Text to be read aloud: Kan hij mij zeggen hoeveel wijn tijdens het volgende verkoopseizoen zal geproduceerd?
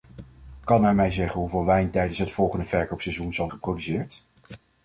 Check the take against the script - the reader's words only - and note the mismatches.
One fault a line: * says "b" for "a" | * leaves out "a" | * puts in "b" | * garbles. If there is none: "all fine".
all fine